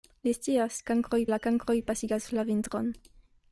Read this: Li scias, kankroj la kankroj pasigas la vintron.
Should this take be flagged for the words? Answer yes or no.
no